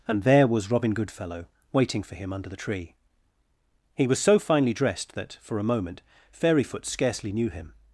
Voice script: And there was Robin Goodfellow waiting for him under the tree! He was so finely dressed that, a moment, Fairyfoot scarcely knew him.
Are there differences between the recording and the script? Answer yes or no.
yes